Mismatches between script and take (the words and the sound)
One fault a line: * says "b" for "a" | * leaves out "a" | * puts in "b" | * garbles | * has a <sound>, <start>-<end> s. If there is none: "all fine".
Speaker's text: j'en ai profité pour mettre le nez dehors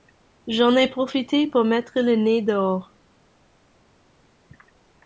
all fine